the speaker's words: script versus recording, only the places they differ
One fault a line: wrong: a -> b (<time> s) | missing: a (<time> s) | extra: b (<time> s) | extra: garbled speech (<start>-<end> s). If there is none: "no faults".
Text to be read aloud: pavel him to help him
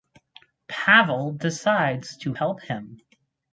wrong: him -> decides (1.3 s)